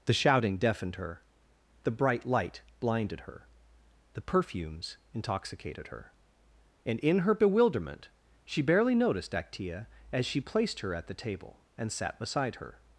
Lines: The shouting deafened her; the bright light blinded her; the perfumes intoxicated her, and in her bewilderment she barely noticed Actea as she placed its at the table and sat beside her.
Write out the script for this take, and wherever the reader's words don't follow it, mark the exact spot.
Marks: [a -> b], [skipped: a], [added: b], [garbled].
The shouting deafened her; the bright light blinded her; the perfumes intoxicated her, and in her bewilderment she barely noticed Actea as she placed [its -> her] at the table and sat beside her.